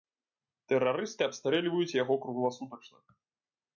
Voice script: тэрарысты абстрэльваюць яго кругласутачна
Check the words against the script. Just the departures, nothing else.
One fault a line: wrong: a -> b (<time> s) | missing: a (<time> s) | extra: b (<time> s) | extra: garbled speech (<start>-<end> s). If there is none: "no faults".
no faults